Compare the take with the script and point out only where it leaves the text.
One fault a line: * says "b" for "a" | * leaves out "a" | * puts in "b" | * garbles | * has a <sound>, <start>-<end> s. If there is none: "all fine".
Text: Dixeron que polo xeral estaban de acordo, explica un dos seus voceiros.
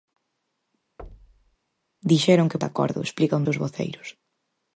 * has a thud, 1.0-1.6 s
* leaves out "polo xeral estaban"
* leaves out "dos"